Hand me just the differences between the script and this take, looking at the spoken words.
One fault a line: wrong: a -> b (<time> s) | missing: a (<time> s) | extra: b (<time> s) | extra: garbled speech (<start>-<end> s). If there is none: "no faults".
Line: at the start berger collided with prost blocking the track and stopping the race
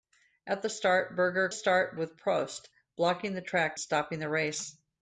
wrong: collided -> start (1.5 s)
missing: and (3.8 s)